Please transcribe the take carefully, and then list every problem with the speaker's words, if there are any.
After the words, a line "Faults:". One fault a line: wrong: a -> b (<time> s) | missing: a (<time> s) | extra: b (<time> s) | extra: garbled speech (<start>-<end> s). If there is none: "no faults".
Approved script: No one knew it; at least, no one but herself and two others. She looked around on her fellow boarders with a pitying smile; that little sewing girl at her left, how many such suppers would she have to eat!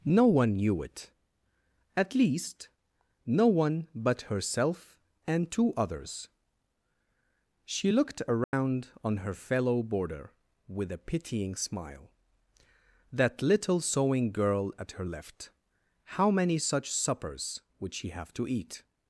No one knew it; at least, no one but herself and two others. She looked around on her fellow boarder with a pitying smile; that little sewing girl at her left, how many such suppers would she have to eat!
Faults:
wrong: boarders -> boarder (9.8 s)